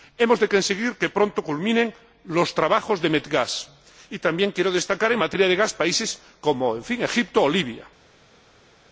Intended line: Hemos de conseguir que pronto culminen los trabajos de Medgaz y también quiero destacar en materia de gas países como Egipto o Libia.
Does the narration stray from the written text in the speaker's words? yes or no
no